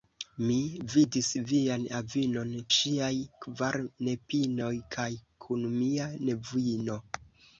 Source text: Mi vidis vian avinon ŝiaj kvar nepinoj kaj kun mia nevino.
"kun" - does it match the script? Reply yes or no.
yes